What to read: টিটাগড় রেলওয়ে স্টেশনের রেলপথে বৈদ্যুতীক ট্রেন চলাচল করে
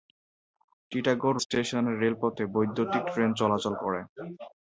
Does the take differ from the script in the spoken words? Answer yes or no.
yes